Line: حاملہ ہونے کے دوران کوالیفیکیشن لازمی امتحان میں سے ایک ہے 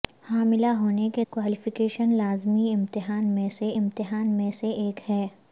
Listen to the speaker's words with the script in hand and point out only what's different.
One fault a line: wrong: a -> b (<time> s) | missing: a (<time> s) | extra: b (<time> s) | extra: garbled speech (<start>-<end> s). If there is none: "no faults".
missing: دوران (1.2 s)
extra: امتحان میں سے (3.8 s)